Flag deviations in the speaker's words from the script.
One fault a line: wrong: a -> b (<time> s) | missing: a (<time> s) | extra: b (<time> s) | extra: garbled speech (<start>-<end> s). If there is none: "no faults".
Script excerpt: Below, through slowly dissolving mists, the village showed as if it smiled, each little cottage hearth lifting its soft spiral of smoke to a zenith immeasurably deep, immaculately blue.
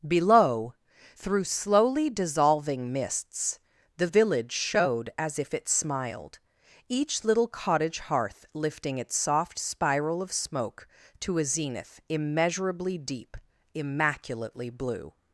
no faults